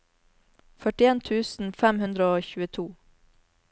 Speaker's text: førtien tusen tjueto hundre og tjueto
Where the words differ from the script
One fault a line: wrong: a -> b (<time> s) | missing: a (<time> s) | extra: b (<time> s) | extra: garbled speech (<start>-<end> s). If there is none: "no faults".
wrong: tjueto -> fem (1.8 s)